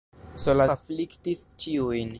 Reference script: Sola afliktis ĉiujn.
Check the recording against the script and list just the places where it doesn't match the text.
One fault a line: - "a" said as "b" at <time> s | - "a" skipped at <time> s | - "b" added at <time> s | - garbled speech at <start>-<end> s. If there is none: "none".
none